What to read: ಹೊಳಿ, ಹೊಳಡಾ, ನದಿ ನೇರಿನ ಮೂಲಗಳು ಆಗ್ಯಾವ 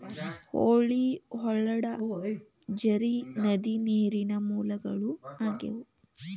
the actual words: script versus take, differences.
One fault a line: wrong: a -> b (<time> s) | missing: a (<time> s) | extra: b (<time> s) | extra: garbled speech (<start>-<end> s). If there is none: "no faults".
extra: ಝರಿ (2.8 s)